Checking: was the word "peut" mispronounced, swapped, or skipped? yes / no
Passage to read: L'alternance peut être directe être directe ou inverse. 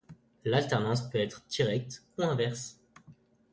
no